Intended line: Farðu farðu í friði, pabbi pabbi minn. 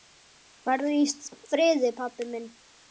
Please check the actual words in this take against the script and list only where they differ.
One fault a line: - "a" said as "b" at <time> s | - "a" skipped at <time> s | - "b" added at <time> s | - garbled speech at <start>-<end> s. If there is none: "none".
- "farðu" skipped at 0.9 s
- "pabbi" skipped at 2.3 s